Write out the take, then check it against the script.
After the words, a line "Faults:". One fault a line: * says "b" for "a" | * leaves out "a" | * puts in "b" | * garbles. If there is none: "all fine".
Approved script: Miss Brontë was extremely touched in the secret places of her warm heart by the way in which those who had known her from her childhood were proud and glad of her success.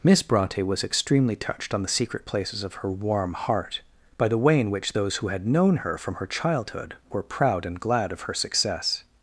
Miss Brontë was extremely touched on the secret places of her warm heart by the way in which those who had known her from her childhood were proud and glad of her success.
Faults:
* says "on" for "in"